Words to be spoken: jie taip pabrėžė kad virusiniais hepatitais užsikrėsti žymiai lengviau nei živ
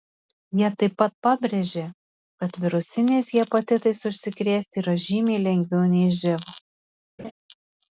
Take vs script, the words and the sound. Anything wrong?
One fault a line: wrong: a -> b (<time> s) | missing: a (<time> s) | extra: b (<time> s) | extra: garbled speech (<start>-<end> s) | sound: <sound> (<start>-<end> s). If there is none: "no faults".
extra: pat (1.0 s)
extra: yra (4.8 s)
sound: laugh (7.2-7.3 s)